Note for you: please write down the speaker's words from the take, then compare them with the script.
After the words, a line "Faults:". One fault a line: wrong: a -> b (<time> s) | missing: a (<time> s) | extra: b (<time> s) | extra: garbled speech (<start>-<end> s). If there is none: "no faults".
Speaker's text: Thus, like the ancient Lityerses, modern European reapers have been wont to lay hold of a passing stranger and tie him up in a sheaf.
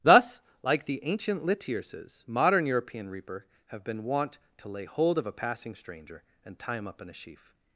Thus, like the ancient Lityerses, modern European reaper have been wont to lay hold of a passing stranger and tie him up in a sheaf.
Faults:
wrong: reapers -> reaper (3.1 s)